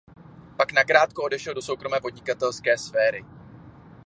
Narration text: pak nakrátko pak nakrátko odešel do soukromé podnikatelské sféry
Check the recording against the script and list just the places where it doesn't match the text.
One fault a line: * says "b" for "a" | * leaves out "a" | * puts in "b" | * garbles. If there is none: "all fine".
* leaves out "pak nakrátko"